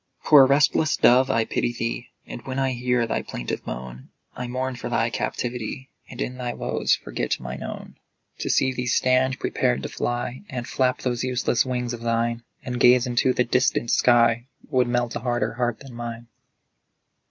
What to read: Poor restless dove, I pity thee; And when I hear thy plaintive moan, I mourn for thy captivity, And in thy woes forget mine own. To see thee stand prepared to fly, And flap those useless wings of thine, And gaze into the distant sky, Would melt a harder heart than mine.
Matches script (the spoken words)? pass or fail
pass